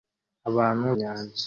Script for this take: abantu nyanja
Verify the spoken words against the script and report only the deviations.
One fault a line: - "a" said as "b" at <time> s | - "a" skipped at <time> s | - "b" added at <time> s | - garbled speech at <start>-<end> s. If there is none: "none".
none